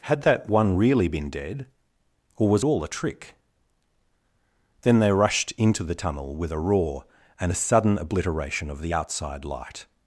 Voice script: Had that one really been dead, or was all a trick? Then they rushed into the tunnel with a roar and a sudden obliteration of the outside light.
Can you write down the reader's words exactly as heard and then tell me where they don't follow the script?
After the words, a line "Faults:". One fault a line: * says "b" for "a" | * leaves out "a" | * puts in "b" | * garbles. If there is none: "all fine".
Had that one really been dead, or was all a trick? Then they rushed into the tunnel with a roar and a sudden obliteration of the outside light.
Faults:
all fine